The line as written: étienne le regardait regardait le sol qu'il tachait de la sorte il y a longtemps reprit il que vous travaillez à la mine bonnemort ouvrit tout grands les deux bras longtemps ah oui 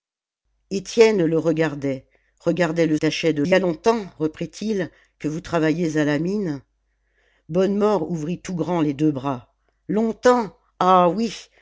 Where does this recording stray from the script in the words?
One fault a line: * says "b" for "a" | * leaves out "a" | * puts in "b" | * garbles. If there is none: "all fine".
* leaves out "sol qu'il"
* leaves out "la sorte il"